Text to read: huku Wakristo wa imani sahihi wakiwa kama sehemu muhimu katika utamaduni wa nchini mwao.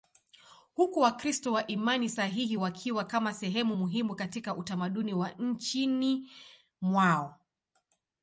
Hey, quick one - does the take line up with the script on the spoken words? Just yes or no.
yes